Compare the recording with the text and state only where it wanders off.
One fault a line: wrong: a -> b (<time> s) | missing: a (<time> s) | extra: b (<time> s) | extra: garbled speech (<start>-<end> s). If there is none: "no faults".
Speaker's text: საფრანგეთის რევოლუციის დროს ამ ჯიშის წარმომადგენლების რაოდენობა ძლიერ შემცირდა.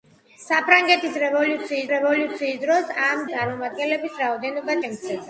extra: რევოლუციის (1.9 s)
missing: ჯიშის (3.2 s)
missing: ძლიერ (4.8 s)